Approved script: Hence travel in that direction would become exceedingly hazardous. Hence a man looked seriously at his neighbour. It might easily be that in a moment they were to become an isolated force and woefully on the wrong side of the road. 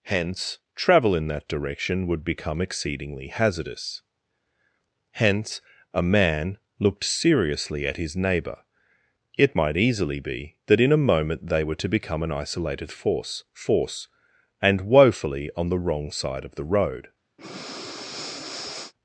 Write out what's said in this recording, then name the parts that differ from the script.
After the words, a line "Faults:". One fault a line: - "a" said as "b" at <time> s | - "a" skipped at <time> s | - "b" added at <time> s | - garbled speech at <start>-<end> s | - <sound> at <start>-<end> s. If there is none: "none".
Hence travel in that direction would become exceedingly hazardous. Hence a man looked seriously at his neighbour. It might easily be that in a moment they were to become an isolated force force and woefully on the wrong side of the road.
Faults:
- "force" added at 13.5 s
- breath at 17.4-18.9 s